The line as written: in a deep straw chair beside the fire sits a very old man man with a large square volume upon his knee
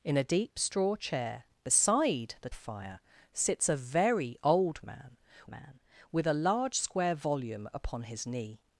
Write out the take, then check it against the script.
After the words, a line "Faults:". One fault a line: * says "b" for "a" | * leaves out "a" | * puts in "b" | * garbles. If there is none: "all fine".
in a deep straw chair beside the fire sits a very old man man with a large square volume upon his knee
Faults:
all fine